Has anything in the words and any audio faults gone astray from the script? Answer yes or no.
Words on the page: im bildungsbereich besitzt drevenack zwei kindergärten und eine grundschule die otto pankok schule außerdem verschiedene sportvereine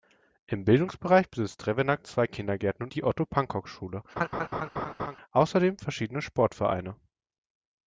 yes